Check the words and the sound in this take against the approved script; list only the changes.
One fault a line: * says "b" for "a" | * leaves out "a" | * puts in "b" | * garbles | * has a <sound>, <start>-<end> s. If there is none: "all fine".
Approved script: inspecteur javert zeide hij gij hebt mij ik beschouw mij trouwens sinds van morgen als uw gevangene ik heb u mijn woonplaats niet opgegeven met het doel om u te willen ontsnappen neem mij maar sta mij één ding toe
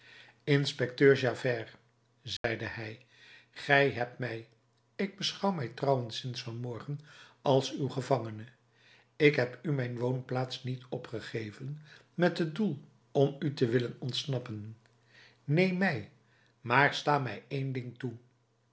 * has a dropout, 2.4-2.4 s